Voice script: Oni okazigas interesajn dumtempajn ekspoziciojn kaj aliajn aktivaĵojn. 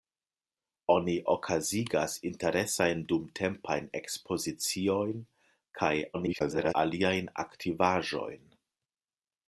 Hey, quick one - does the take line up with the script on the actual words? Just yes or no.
no